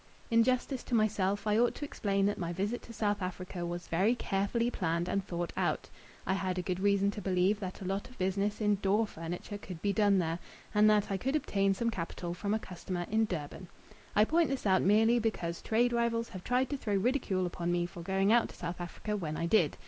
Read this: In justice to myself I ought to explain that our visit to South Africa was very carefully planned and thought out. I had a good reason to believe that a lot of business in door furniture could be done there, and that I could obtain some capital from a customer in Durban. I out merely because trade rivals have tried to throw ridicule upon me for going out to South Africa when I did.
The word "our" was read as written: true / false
false